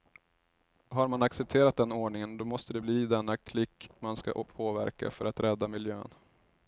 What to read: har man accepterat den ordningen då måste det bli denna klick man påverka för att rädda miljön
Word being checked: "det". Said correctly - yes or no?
yes